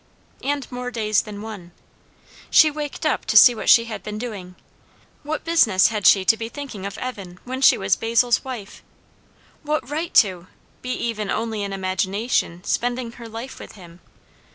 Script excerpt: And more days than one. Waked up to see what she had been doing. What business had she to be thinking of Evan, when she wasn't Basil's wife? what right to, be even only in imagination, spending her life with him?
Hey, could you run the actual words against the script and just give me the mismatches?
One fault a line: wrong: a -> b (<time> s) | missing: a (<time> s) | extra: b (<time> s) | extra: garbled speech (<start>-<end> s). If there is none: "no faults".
extra: She (2.5 s)
wrong: wasn't -> was (7.8 s)